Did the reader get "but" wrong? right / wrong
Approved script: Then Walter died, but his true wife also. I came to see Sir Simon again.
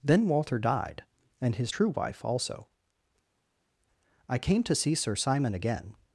wrong